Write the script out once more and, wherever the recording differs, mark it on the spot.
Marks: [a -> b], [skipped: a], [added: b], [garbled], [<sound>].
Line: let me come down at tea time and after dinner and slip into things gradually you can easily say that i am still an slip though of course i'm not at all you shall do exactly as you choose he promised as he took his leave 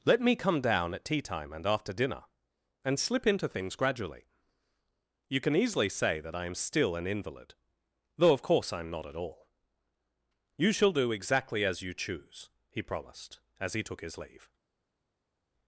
let me come down at tea time and after dinner and slip into things gradually you can easily say that i am still an [slip -> invalid] though of course i'm not at all you shall do exactly as you choose he promised as he took his leave